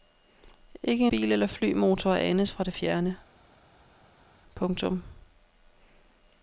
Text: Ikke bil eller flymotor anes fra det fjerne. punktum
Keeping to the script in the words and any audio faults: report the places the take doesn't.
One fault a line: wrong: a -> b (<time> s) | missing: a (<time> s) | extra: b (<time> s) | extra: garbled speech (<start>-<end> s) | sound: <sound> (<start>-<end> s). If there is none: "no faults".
no faults